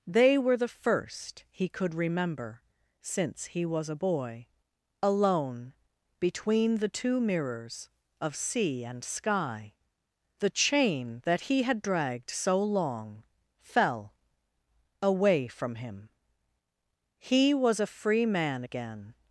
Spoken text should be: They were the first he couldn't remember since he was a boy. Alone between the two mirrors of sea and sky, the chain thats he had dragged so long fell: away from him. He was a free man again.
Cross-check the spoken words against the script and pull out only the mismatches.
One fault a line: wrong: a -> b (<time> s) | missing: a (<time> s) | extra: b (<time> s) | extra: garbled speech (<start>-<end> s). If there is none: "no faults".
wrong: couldn't -> could (1.7 s)
wrong: thats -> that (11.2 s)